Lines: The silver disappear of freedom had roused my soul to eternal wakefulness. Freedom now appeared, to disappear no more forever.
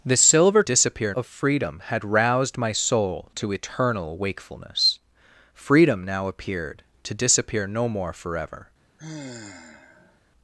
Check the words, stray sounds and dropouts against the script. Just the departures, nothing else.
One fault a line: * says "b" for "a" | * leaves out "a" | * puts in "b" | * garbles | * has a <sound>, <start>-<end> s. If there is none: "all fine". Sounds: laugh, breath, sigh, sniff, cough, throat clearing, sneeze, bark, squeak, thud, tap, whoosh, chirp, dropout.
* has a sigh, 9.0-10.2 s